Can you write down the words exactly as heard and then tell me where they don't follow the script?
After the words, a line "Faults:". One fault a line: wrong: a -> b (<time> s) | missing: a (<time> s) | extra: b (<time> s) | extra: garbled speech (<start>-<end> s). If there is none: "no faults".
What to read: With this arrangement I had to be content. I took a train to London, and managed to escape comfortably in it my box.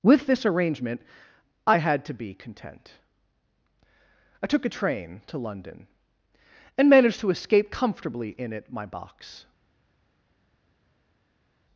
With this arrangement I had to be content. I took a train to London, and managed to escape comfortably in it my box.
Faults:
no faults